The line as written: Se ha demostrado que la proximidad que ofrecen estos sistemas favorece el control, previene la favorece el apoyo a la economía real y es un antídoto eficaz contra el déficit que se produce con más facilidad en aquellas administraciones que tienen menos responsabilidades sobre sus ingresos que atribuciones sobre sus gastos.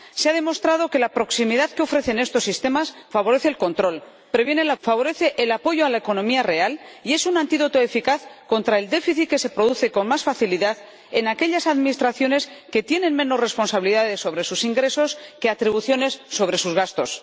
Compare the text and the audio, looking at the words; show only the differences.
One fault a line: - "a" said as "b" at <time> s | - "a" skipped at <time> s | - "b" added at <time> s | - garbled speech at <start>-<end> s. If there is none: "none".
none